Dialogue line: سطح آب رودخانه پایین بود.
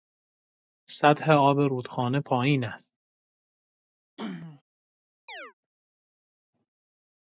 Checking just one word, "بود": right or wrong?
wrong